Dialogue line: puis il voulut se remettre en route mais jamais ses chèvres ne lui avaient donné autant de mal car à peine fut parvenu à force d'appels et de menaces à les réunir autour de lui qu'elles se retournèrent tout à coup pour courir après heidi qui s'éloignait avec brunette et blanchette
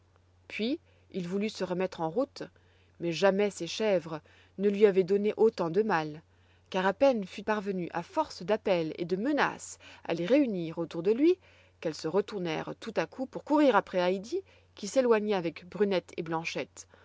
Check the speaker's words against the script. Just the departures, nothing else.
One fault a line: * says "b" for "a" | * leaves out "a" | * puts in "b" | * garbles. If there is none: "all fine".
all fine